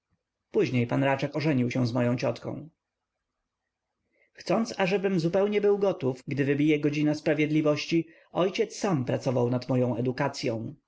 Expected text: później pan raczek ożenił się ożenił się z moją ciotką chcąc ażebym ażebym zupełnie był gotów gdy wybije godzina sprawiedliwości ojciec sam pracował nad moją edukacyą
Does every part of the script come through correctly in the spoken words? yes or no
no